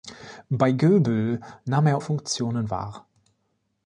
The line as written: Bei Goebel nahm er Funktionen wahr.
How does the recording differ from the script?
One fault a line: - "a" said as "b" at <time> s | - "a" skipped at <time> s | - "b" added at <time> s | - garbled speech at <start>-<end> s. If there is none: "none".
none